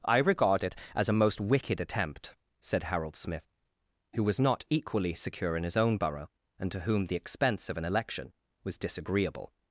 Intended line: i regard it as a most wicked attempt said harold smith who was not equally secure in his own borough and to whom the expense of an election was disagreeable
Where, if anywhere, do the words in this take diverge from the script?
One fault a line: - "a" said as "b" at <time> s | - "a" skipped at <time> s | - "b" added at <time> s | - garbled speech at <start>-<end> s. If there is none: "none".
none